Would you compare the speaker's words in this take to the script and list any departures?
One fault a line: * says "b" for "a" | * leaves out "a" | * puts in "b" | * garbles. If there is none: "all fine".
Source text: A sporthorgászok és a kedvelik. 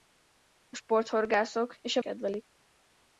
all fine